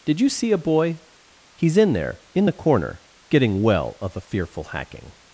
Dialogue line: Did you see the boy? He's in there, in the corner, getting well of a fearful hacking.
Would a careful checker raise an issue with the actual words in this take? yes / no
yes